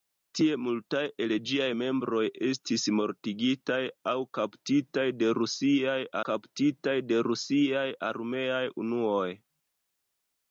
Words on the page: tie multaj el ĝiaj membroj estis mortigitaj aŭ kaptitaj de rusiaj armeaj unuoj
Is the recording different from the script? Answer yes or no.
yes